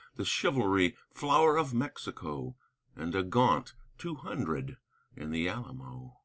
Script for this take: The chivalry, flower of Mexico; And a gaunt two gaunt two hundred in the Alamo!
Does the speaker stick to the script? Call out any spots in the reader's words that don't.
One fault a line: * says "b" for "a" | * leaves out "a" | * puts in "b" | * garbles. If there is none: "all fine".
* leaves out "gaunt two"